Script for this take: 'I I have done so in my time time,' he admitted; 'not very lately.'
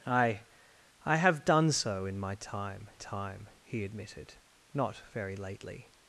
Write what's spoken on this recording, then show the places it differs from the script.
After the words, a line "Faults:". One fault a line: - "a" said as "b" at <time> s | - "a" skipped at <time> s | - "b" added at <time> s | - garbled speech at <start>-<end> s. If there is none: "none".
'I I have done so in my time time,' he admitted; 'not very lately.'
Faults:
none